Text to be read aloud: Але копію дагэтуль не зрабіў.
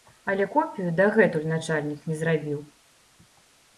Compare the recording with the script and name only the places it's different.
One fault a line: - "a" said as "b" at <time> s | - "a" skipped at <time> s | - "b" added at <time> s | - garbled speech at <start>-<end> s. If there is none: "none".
- "начальнік" added at 1.5 s